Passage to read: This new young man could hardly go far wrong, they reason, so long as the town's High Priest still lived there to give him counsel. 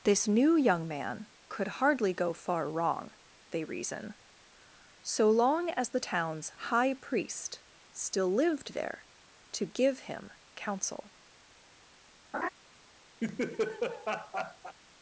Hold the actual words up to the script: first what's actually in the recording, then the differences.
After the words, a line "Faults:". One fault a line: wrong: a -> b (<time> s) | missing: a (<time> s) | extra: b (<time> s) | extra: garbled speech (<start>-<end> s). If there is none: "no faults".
This new young man could hardly go far wrong, they reason, so long as the town's High Priest still lived there to give him counsel.
Faults:
no faults